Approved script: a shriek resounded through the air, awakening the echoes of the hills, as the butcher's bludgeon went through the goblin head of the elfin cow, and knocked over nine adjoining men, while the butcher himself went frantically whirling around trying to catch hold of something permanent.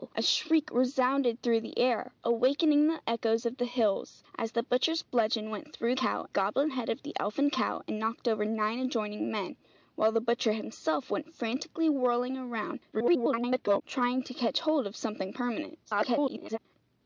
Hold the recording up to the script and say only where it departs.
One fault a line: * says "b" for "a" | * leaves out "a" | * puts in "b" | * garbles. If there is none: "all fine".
* says "cow" for "the"
* garbles
* garbles